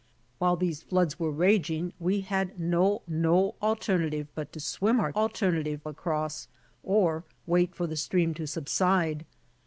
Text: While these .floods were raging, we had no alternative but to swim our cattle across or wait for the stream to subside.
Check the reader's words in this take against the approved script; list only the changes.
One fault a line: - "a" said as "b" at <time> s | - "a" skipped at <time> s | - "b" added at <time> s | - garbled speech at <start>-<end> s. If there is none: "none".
- "no" added at 3.1 s
- "cattle" said as "alternative" at 5.1 s